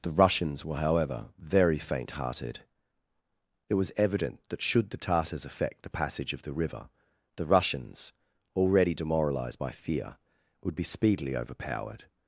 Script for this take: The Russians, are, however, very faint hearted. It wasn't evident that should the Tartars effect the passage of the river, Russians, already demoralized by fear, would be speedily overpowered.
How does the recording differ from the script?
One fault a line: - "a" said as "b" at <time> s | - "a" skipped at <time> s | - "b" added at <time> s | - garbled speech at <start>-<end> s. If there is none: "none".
- "are" said as "were" at 0.7 s
- "wasn't" said as "was" at 3.8 s
- "the" added at 7.3 s